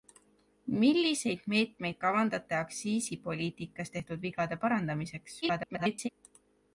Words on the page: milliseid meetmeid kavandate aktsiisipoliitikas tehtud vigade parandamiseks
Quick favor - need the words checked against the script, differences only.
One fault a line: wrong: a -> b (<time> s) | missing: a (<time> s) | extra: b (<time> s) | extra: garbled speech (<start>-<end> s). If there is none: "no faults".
extra: garbled speech (5.4-6.1 s)